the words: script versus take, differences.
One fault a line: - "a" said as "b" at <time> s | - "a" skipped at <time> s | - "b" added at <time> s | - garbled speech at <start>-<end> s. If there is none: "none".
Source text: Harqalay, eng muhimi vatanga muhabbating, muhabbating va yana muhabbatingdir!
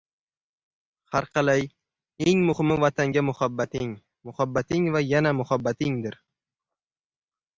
none